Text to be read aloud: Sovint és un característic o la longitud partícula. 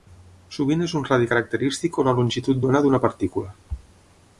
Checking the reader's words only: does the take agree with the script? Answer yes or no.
no